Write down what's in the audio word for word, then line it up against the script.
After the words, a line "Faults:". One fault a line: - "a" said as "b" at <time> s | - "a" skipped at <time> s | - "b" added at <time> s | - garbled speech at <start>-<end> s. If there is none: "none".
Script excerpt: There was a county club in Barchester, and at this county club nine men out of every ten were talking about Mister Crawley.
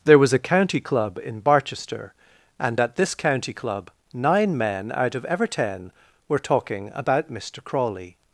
There was a county club in Barchester, and at this county club nine men out of ever ten were talking about Mister Crawley.
Faults:
- "every" said as "ever" at 5.3 s